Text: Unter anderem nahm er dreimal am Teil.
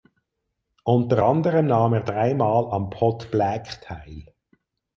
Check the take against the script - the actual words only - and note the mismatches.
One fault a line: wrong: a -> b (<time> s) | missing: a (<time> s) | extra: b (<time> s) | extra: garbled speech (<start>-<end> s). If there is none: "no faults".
extra: Pot Black (2.9 s)